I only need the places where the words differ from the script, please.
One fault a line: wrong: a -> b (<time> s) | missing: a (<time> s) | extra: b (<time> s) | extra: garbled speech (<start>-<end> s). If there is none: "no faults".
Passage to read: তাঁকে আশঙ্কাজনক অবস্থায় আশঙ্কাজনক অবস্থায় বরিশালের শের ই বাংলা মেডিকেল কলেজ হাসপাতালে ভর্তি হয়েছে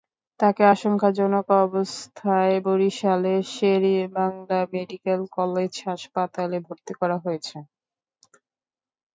missing: আশঙ্কাজনক অবস্থায় (2.5 s)
extra: করা (7.0 s)